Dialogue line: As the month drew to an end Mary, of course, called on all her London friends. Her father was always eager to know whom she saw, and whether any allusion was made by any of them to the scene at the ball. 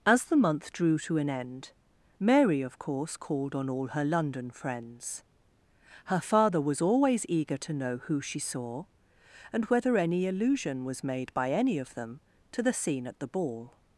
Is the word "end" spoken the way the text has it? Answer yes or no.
yes